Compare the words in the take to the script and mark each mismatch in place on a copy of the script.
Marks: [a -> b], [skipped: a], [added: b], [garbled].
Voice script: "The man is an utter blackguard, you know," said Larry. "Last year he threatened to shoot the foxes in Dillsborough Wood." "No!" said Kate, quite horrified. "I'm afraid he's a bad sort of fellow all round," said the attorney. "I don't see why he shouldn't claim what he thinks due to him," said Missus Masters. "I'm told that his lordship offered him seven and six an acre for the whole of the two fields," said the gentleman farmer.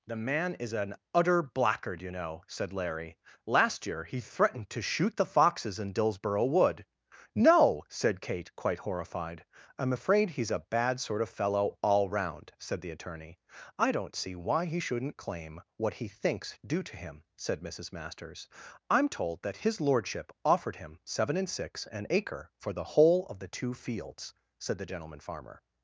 "The man is an utter blackguard, you know," said Larry. "Last year he threatened to shoot the foxes in Dillsborough Wood." "No!" said Kate, quite horrified. "I'm afraid he's a bad sort of fellow all round," said the attorney. "I don't see why he shouldn't claim what he thinks due to him," said Missus Masters. "I'm told that his lordship offered him seven and six an acre for the whole of the two fields," said the gentleman farmer.